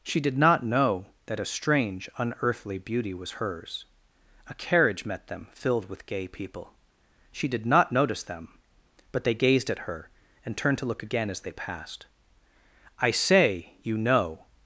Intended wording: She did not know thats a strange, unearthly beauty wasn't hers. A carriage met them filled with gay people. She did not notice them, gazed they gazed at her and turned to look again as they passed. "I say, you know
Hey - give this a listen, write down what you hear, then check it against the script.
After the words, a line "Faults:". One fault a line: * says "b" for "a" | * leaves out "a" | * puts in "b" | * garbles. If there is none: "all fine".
She did not know that a strange, unearthly beauty was hers. A carriage met them filled with gay people. She did not notice them, but they gazed at her and turned to look again as they passed. "I say, you know
Faults:
* says "that" for "thats"
* says "was" for "wasn't"
* says "but" for "gazed"